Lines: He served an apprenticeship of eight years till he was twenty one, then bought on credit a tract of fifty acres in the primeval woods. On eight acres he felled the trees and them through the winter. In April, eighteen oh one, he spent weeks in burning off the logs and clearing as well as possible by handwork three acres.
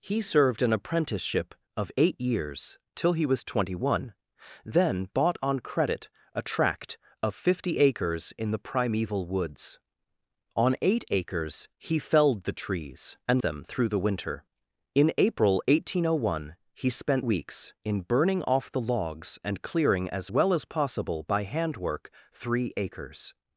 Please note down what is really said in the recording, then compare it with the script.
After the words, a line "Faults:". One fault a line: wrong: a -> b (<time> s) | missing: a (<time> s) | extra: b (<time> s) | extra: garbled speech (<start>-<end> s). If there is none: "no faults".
He served an apprenticeship of eight years till he was twenty one, then bought on credit a tract of fifty acres in the primeval woods. On eight acres he felled the trees and them through the winter. In April, eighteen oh one, he spent weeks in burning off the logs and clearing as well as possible by handwork three acres.
Faults:
no faults